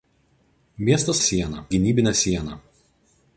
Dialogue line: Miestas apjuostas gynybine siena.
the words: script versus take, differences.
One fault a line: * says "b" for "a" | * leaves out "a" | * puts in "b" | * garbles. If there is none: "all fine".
* says "siena" for "apjuostas"